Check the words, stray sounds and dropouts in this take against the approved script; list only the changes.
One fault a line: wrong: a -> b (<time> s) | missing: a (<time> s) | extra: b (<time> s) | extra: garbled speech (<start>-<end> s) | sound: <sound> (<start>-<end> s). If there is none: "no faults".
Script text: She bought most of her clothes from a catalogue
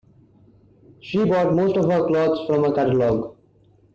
no faults